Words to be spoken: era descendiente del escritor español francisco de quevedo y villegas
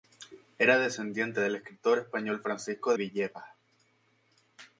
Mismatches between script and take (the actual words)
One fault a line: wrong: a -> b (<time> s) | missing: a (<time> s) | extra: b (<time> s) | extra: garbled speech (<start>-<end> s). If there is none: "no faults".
missing: de quevedo y (2.9 s)